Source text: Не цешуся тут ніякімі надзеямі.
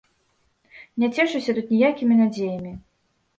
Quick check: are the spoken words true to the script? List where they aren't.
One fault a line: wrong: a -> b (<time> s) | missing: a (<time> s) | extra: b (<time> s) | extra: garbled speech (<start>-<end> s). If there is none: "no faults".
no faults